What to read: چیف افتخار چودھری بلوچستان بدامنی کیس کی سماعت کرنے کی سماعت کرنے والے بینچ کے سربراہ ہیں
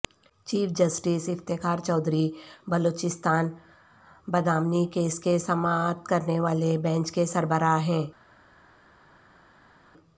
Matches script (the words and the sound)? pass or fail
fail